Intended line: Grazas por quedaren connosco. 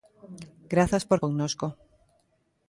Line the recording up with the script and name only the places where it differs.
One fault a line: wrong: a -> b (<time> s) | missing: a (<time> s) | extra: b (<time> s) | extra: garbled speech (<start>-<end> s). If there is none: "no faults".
missing: quedaren (1.2 s)